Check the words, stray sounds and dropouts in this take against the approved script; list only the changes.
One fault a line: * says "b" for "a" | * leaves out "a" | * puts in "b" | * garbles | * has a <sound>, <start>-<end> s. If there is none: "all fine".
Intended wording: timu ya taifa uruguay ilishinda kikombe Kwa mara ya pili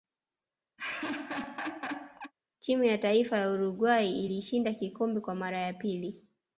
* has a laugh, 0.8-2.3 s
* puts in "ya"